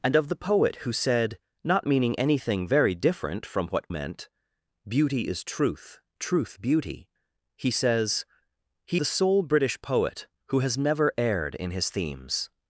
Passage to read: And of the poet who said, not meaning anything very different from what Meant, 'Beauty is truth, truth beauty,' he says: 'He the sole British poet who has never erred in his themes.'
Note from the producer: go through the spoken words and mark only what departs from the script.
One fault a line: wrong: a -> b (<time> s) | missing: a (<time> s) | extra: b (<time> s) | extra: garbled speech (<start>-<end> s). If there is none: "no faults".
no faults